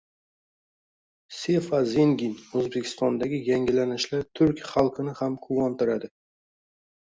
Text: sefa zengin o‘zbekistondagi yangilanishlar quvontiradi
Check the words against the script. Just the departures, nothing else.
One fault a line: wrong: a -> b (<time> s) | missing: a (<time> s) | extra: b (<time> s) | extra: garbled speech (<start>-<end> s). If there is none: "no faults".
extra: turk xalqini ham (4.4 s)